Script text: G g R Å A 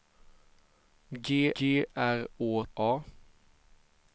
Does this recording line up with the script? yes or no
yes